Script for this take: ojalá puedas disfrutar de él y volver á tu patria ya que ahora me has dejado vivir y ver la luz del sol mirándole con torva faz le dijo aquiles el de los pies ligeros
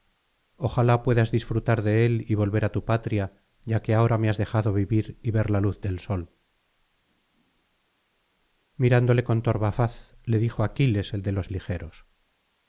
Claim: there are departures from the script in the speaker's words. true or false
true